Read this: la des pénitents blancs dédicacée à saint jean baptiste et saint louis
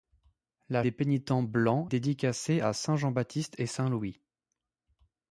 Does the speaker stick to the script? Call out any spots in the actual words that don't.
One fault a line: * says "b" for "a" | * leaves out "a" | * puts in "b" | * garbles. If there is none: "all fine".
all fine